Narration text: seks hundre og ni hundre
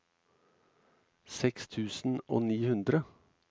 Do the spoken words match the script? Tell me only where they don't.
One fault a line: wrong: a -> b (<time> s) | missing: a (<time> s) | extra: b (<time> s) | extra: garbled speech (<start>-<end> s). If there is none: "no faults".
wrong: hundre -> tusen (1.8 s)